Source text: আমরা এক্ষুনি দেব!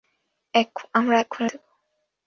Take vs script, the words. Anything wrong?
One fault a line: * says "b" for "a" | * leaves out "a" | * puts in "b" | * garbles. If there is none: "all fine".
all fine